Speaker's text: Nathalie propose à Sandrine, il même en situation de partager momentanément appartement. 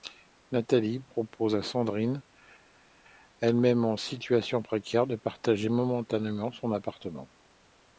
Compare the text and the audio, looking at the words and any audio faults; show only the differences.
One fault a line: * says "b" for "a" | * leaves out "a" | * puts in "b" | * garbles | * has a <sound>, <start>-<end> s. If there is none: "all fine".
* says "elle" for "il"
* puts in "précaire"
* puts in "son"